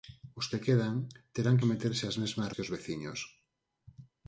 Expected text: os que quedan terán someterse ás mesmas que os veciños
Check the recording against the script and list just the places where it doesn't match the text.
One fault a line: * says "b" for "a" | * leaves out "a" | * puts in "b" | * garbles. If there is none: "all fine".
all fine